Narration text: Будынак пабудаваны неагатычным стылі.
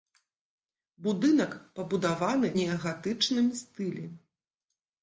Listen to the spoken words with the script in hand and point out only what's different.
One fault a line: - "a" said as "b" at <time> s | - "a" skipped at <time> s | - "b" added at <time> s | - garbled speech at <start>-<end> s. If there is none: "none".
none